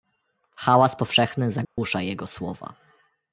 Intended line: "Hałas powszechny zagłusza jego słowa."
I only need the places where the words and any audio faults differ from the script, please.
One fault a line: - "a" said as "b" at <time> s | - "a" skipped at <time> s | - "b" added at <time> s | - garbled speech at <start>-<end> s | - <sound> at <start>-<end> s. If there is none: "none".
- dropout at 1.6-1.8 s